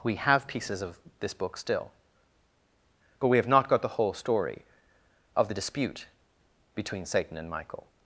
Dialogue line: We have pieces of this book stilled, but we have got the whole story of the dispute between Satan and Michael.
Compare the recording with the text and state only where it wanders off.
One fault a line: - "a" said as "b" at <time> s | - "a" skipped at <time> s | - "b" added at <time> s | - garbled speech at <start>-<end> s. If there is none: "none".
- "stilled" said as "still" at 1.6 s
- "not" added at 3.5 s